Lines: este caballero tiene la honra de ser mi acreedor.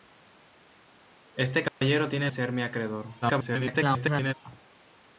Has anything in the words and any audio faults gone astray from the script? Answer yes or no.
yes